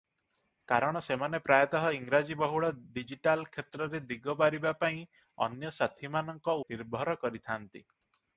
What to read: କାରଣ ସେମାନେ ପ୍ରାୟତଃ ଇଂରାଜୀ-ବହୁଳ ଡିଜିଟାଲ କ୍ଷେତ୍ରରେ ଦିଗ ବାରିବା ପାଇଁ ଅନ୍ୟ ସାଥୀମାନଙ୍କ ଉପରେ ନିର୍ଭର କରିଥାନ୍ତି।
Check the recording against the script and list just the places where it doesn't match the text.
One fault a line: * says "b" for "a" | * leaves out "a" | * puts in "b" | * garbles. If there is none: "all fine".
* leaves out "ଉପରେ"